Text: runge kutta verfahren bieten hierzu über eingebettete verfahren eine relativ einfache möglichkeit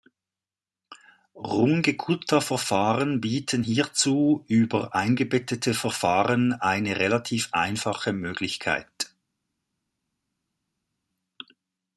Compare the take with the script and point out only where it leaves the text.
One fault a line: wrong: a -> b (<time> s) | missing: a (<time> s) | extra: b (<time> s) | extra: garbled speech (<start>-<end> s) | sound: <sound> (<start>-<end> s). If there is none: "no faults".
no faults